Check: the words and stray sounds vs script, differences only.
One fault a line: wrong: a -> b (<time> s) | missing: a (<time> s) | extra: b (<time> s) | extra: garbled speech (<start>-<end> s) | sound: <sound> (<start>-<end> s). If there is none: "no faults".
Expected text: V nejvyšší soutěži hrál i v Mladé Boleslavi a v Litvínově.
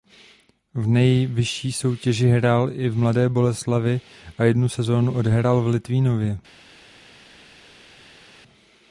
extra: jednu sezónu odehrál (4.4 s)